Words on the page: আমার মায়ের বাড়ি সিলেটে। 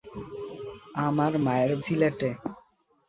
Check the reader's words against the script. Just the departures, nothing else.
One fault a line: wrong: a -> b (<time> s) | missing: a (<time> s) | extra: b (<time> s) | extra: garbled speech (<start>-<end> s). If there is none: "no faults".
missing: বাড়ি (1.7 s)